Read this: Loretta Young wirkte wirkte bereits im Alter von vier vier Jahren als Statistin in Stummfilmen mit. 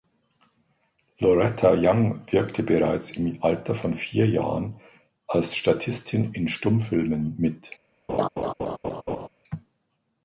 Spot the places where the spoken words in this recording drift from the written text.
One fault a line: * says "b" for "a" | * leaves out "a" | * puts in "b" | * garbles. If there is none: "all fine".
* leaves out "wirkte"
* leaves out "vier"